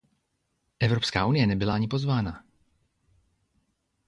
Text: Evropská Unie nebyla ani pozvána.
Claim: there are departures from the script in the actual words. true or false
false